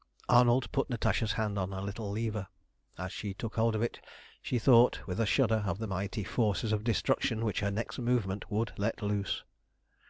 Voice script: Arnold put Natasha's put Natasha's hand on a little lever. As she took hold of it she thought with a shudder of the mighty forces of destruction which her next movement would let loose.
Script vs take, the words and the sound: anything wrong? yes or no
yes